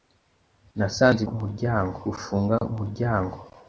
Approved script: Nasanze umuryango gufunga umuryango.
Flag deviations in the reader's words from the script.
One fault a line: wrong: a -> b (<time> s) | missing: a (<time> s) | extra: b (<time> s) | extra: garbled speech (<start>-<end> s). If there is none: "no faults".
no faults